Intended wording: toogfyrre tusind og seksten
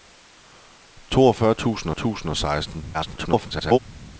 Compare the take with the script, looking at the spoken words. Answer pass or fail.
fail